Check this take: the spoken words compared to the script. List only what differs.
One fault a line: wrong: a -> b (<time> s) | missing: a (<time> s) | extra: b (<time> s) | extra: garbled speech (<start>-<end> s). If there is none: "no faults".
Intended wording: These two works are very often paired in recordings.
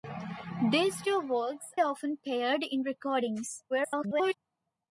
missing: are very (1.7 s)
extra: garbled speech (3.7-4.3 s)